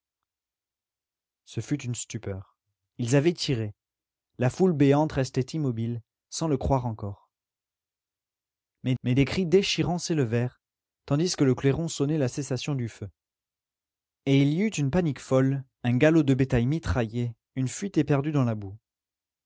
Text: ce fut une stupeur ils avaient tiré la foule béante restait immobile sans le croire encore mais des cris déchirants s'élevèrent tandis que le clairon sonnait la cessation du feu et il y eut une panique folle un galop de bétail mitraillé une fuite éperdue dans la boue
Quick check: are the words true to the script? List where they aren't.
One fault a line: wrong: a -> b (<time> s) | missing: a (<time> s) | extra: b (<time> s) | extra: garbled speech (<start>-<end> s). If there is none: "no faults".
extra: mais (9.0 s)